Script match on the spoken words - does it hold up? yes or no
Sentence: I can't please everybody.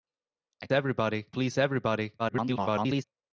no